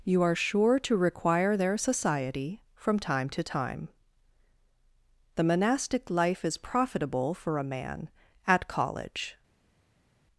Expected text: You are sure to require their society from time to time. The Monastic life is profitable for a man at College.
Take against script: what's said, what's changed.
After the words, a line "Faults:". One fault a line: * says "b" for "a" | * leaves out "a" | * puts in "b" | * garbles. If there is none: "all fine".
You are sure to require their society from time to time. The Monastic life is profitable for a man at College.
Faults:
all fine